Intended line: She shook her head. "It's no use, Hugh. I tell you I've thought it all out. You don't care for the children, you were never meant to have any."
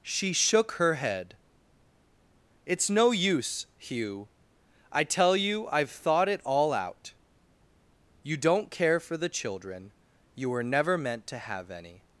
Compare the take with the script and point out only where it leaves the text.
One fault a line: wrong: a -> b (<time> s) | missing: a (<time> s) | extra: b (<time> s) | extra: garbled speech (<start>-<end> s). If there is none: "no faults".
no faults